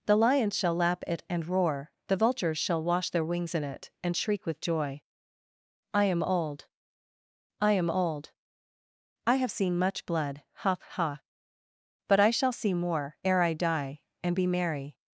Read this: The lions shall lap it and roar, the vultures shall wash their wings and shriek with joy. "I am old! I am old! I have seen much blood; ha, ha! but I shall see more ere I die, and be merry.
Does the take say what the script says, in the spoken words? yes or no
no